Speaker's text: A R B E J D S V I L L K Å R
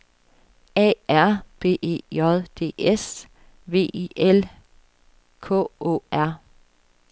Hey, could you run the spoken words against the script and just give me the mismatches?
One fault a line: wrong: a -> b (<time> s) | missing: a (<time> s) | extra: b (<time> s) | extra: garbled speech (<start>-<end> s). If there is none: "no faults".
missing: L (4.4 s)